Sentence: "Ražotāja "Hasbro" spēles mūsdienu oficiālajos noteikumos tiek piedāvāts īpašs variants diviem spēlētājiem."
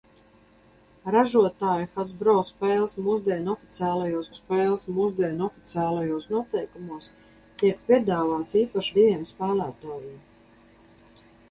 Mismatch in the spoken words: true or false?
true